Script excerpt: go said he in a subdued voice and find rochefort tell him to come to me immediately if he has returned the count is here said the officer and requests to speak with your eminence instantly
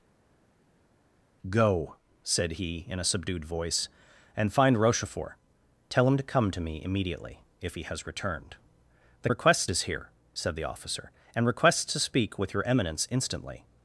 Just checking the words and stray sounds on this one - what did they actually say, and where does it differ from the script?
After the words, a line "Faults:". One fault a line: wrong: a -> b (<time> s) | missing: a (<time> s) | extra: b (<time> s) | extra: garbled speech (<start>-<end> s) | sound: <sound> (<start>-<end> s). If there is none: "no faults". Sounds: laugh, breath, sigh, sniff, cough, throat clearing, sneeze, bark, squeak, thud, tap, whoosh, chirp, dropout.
go said he in a subdued voice and find rochefort tell him to come to me immediately if he has returned the requests is here said the officer and requests to speak with your eminence instantly
Faults:
wrong: count -> requests (9.3 s)